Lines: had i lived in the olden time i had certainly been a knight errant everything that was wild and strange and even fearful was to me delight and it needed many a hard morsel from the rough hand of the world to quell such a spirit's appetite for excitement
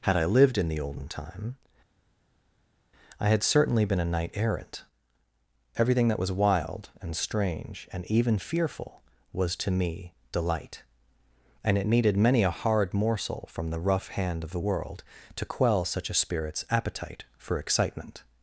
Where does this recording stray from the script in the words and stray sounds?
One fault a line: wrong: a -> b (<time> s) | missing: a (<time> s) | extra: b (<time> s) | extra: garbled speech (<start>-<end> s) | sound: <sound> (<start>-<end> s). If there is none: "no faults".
no faults